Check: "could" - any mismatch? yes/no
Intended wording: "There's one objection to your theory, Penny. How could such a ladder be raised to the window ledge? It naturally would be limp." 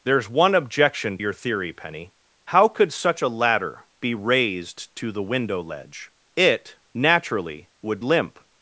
no